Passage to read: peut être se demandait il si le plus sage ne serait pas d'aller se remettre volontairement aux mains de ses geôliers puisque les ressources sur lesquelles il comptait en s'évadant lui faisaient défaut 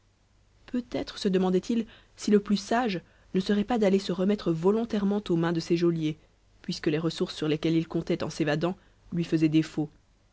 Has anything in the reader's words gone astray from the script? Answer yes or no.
no